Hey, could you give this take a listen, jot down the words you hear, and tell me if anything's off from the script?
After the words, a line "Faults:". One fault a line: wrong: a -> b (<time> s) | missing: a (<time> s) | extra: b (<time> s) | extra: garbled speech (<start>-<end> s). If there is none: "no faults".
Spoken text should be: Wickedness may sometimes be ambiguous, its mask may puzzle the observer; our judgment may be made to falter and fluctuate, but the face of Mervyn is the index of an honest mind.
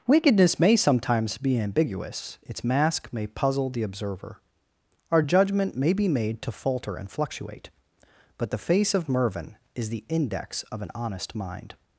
Wickedness may sometimes be ambiguous, its mask may puzzle the observer; our judgment may be made to falter and fluctuate, but the face of Mervyn is the index of an honest mind.
Faults:
no faults